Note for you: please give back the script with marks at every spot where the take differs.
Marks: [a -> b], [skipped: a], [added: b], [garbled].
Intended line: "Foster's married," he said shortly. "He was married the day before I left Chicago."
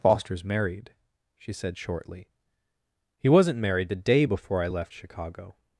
"Foster's married," [he -> she] said shortly. "He [was -> wasn't] married the day before I left Chicago."